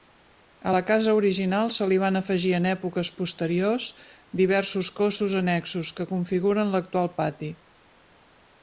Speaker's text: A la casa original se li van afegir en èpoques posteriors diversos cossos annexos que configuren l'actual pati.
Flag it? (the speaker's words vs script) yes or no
no